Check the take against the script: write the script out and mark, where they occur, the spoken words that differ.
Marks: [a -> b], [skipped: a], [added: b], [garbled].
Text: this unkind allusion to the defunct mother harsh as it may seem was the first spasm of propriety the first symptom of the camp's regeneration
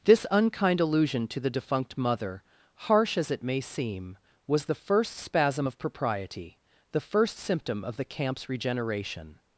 this unkind allusion to the defunct mother harsh as it may seem was the first spasm of propriety the first symptom of the camp's regeneration